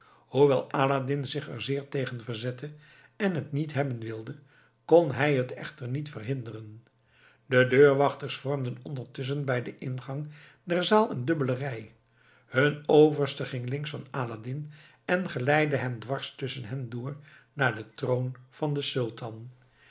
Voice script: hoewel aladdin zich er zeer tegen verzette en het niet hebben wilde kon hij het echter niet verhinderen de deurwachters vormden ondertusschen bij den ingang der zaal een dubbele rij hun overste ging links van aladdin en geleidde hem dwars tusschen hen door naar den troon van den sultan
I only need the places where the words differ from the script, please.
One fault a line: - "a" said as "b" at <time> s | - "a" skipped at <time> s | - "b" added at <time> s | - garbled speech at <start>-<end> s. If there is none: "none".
none